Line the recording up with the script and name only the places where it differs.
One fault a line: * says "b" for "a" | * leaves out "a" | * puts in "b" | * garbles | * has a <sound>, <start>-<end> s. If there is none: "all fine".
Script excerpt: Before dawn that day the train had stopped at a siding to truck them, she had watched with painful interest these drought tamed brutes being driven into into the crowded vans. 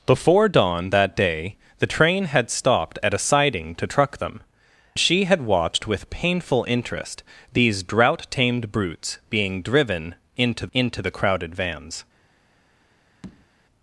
* has a tap, 13.2-13.5 s